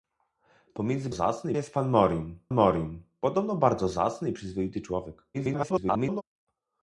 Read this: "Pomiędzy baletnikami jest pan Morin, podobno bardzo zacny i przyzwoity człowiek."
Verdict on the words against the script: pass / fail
fail